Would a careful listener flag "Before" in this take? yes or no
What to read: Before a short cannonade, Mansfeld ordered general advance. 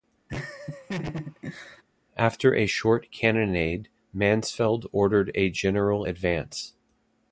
yes